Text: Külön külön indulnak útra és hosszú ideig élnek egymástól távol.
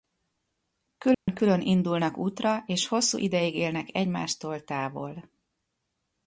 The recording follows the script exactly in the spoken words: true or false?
true